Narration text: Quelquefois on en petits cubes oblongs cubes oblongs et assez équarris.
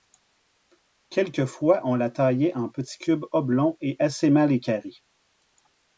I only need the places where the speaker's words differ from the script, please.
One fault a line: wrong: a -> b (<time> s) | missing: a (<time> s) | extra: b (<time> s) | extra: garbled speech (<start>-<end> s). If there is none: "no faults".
extra: la taillait (1.9 s)
missing: cubes oblongs (3.8 s)
extra: mal (4.3 s)